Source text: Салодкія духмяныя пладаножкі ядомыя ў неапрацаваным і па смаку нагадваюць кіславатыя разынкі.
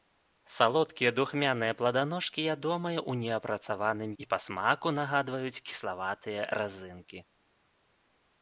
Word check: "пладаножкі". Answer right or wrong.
right